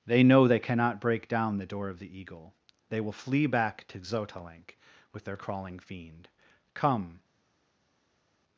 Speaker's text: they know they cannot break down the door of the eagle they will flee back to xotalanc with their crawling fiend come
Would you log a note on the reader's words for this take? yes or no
no